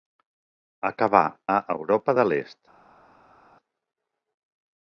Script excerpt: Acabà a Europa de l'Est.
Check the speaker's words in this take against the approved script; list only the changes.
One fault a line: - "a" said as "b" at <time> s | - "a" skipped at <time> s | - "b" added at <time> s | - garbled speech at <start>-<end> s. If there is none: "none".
none